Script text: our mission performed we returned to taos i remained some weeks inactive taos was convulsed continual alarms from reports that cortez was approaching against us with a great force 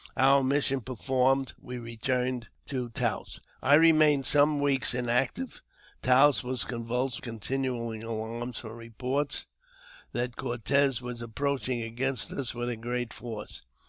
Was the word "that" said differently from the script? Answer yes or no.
no